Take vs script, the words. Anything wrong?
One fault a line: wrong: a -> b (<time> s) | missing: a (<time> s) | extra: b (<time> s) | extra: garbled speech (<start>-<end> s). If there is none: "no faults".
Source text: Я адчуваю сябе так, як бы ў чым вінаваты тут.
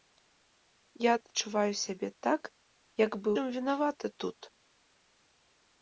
missing: ў (3.3 s)